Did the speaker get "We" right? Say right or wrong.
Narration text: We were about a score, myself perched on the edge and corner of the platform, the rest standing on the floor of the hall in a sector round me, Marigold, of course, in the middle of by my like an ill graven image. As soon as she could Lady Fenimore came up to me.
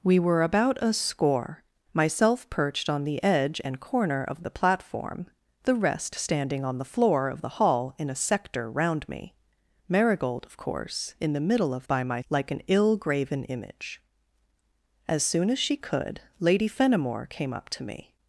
right